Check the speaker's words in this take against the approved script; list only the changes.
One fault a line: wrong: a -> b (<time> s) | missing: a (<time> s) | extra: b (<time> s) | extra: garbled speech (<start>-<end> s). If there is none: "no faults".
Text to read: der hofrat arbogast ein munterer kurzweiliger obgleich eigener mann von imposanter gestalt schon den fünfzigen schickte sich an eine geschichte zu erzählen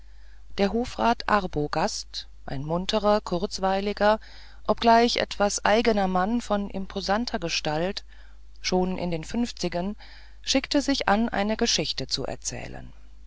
extra: etwas (5.2 s)
extra: in (9.0 s)